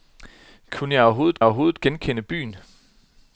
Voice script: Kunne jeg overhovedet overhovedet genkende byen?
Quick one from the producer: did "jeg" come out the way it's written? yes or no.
yes